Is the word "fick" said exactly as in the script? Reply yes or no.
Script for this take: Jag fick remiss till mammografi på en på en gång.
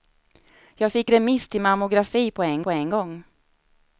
yes